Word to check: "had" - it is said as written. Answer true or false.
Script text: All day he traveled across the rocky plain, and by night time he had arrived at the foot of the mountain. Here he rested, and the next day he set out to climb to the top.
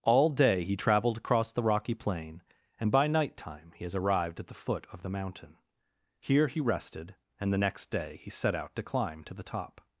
false